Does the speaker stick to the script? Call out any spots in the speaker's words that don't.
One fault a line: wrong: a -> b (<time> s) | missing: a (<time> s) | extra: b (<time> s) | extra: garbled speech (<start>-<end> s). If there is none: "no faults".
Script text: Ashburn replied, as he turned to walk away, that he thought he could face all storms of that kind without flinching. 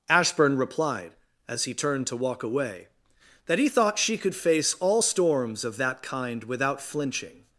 wrong: he -> she (4.0 s)